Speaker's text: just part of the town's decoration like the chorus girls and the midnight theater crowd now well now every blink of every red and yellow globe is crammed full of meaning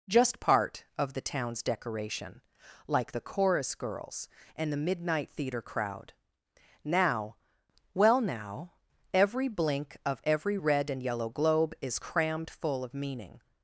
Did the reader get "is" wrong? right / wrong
right